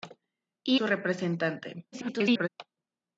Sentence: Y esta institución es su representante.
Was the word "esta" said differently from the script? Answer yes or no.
yes